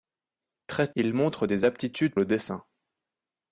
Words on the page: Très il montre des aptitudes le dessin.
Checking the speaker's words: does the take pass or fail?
pass